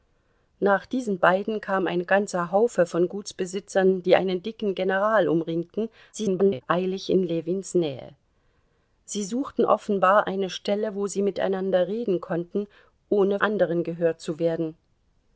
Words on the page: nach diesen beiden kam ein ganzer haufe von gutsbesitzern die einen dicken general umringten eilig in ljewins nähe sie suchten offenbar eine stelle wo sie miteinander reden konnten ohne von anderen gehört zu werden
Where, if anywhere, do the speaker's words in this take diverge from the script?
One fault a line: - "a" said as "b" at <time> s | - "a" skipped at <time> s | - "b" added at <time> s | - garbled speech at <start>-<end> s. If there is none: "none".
- garbled speech at 6.1-6.6 s
- "von" skipped at 13.4 s